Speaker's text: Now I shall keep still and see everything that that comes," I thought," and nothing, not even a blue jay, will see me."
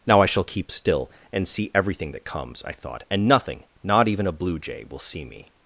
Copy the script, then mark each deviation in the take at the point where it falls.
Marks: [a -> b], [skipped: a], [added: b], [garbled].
Now I shall keep still and see everything that [skipped: that] comes," I thought," and nothing, not even a blue jay, will see me."